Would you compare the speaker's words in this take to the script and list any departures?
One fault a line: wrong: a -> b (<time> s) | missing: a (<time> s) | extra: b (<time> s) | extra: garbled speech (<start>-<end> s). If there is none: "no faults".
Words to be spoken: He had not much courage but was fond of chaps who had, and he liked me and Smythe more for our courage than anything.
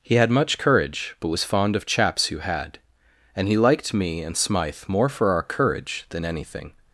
missing: not (0.3 s)